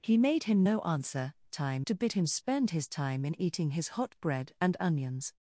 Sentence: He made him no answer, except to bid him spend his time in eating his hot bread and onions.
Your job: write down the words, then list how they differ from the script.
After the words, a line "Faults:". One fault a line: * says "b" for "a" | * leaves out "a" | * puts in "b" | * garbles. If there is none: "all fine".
He made him no answer, time to bid him spend his time in eating his hot bread and onions.
Faults:
* says "time" for "except"